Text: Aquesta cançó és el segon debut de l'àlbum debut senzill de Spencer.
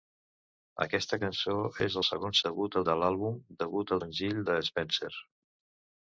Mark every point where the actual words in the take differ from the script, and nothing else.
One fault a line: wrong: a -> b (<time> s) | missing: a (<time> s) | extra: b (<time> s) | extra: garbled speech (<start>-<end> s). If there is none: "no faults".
no faults